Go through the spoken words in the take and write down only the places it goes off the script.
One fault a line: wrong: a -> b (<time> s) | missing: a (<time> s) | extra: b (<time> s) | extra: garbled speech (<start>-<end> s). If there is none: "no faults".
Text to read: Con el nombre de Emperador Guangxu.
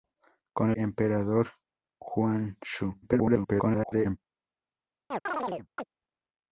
missing: el nombre de (0.7 s)
extra: garbled speech (3.0-4.2 s)